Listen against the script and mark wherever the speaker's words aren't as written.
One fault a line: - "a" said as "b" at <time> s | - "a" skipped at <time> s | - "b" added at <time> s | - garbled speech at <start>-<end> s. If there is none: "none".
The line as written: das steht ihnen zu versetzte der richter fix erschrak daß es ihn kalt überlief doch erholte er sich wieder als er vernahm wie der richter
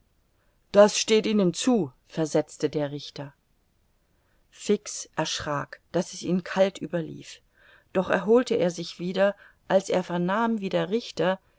none